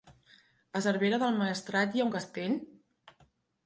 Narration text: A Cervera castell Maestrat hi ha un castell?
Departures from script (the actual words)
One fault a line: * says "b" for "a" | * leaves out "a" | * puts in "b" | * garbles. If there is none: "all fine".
* says "del" for "castell"